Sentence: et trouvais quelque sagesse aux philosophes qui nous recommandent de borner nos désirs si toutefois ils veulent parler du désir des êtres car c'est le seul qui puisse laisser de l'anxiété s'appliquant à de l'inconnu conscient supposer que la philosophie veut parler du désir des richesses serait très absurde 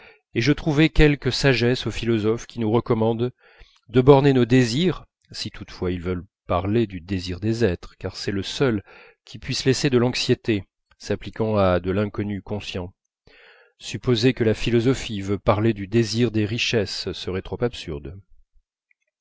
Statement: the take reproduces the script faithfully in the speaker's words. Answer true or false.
false